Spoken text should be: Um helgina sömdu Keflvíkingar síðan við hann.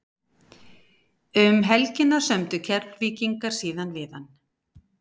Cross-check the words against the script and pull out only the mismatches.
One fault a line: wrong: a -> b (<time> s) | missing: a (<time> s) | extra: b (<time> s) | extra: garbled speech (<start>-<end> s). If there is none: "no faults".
no faults